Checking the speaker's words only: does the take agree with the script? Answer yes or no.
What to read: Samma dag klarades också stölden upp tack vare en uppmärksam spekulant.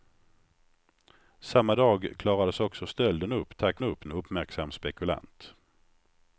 no